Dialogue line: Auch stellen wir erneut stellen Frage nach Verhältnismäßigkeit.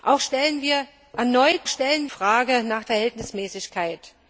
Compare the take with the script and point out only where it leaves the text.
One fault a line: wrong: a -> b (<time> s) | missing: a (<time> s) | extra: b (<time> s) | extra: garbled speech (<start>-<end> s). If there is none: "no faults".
no faults